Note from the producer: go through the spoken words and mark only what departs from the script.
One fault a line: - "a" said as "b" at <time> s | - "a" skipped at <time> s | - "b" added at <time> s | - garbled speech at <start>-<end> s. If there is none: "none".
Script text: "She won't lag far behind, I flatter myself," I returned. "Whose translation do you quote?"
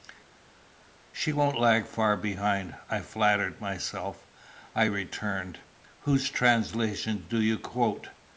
none